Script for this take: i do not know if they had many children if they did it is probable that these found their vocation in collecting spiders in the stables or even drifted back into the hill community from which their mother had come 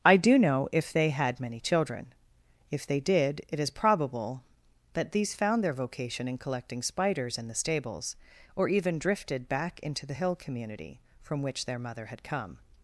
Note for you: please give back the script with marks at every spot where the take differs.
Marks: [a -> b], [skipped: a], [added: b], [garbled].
i do [skipped: not] know if they had many children if they did it is probable that these found their vocation in collecting spiders in the stables or even drifted back into the hill community from which their mother had come